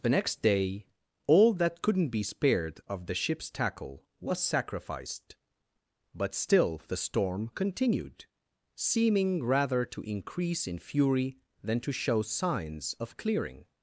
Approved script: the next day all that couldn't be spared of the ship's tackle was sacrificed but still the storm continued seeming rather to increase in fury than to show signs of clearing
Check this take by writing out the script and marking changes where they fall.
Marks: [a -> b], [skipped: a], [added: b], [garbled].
the next day all that couldn't be spared of the ship's tackle was sacrificed but still the storm continued seeming rather to increase in fury than to show signs of clearing